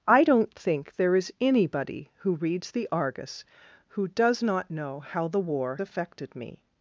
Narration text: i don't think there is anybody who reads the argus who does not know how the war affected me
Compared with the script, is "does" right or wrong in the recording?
right